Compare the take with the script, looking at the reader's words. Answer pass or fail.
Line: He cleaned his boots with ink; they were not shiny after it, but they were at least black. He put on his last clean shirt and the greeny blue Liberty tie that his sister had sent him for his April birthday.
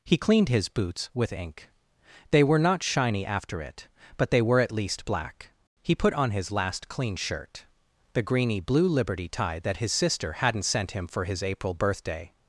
fail